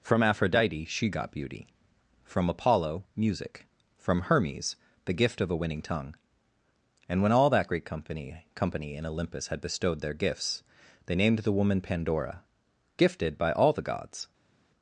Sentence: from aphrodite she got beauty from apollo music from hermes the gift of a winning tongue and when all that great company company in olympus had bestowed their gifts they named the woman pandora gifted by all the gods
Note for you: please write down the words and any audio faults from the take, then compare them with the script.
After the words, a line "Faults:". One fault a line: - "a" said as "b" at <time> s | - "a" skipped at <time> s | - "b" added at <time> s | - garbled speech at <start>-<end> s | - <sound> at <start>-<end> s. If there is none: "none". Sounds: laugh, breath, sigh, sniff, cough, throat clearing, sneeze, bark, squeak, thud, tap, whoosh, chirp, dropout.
from aphrodite she got beauty from apollo music from hermes the gift of a winning tongue and when all that great company company in olympus had bestowed their gifts they named the woman pandora gifted by all the gods
Faults:
none